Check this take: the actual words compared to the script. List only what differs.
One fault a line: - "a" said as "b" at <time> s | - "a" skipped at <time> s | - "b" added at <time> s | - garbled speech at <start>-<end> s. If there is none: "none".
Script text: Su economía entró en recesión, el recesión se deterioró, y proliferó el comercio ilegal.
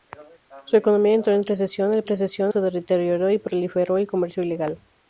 none